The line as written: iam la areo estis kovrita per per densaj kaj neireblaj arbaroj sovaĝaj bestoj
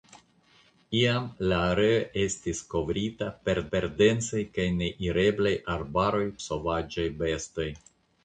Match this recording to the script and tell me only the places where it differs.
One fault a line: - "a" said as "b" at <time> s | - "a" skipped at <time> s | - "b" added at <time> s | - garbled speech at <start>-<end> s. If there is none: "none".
none